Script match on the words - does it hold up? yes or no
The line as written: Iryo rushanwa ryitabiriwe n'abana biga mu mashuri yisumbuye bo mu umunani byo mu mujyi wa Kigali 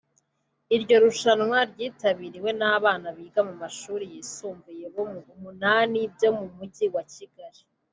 yes